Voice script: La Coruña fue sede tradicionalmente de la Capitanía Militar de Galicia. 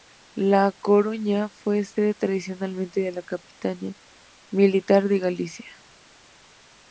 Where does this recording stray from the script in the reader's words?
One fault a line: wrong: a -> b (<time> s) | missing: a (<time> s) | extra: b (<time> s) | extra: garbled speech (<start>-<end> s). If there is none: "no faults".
no faults